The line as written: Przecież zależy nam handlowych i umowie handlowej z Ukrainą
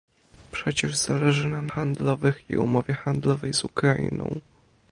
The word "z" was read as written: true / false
true